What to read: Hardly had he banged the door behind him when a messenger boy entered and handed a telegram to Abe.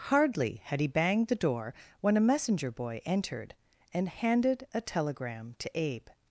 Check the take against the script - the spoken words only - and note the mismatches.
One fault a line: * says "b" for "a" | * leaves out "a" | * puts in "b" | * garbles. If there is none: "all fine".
* leaves out "behind him"